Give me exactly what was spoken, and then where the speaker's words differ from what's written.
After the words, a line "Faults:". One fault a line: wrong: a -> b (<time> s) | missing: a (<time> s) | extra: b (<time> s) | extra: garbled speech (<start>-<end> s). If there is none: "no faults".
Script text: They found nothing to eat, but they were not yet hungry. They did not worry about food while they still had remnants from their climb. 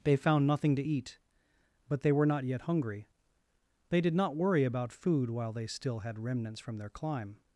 They found nothing to eat, but they were not yet hungry. They did not worry about food while they still had remnants from their climb.
Faults:
no faults